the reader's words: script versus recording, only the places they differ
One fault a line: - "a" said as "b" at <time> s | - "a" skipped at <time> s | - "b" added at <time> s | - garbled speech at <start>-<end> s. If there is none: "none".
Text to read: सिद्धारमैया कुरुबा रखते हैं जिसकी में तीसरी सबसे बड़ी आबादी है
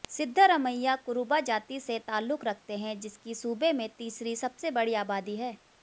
- "जाति से ताल्लुक" added at 1.4 s
- "सूबे" added at 3.3 s